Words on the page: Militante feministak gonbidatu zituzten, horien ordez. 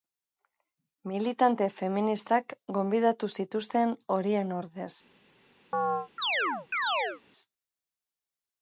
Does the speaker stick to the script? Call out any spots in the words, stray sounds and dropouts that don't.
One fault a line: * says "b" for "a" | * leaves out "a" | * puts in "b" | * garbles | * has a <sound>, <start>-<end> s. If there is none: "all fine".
* has a chirp, 5.7-7.2 s